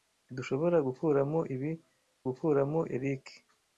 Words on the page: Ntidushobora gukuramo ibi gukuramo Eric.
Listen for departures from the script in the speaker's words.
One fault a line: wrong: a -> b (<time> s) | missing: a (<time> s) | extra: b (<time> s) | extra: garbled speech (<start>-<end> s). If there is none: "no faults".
no faults